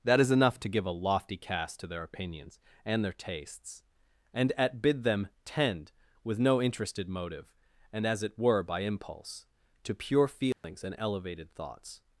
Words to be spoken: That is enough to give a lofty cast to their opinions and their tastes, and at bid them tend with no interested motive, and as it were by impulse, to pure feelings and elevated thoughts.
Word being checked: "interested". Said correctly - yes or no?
yes